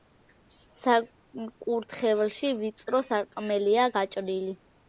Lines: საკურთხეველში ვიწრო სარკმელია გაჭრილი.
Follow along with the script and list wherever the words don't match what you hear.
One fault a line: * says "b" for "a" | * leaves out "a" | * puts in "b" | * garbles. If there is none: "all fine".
all fine